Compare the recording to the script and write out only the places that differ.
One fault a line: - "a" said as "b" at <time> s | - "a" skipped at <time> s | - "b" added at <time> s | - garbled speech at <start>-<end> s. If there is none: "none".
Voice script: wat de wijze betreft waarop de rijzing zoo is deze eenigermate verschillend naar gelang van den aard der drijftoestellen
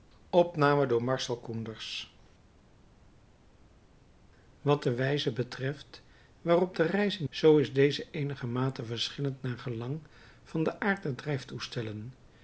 none